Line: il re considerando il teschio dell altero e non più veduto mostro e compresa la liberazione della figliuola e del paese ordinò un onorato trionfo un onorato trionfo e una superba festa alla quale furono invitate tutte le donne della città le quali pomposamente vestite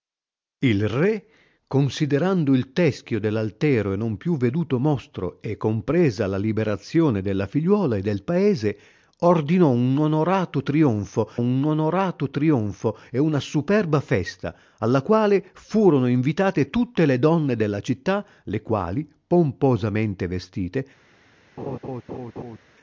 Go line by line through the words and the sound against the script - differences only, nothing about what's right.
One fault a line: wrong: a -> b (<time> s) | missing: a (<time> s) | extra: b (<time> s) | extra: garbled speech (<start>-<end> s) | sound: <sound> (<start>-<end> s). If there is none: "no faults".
sound: laugh (21.6-22.6 s)